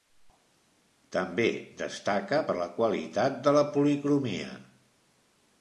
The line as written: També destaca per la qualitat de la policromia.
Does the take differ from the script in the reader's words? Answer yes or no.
no